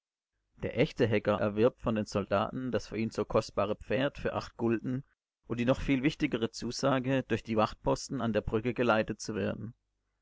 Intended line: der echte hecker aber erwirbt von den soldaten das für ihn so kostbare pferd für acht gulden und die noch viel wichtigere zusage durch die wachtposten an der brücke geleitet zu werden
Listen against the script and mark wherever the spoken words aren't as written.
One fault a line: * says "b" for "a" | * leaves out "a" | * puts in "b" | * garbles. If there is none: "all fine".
* leaves out "aber"